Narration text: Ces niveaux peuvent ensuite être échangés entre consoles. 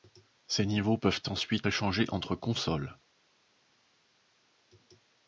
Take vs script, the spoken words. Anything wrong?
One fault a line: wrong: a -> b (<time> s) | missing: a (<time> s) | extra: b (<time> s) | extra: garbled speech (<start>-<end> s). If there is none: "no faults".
missing: être (1.7 s)